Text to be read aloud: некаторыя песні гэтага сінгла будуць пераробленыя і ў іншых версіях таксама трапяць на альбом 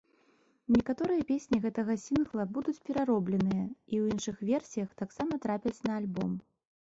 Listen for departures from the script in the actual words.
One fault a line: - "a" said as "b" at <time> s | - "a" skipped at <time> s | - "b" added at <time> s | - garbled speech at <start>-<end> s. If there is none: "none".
none